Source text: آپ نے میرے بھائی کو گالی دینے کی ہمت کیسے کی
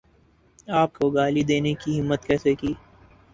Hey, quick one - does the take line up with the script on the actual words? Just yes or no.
no